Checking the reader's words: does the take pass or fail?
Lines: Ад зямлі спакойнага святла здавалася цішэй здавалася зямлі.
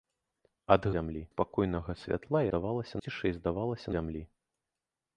pass